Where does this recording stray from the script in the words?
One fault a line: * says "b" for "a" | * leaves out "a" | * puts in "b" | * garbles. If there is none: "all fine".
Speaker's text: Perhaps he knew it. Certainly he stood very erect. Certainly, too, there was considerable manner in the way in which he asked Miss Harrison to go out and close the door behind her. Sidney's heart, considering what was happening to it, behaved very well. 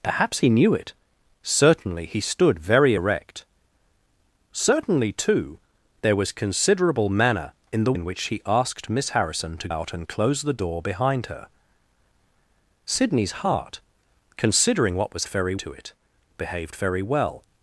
* leaves out "way"
* leaves out "go"
* says "very" for "happening"